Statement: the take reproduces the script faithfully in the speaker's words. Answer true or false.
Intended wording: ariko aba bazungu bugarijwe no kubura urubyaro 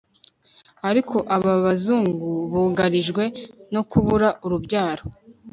true